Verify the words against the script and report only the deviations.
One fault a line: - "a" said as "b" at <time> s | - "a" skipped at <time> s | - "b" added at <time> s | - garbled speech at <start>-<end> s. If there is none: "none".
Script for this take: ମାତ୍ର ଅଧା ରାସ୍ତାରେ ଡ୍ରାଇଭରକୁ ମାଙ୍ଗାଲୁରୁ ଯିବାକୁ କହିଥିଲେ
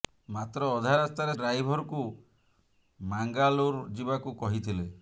none